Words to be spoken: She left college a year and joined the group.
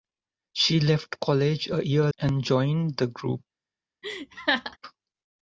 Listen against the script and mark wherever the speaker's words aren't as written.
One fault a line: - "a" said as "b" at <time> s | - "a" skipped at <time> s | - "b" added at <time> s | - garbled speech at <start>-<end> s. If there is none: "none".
none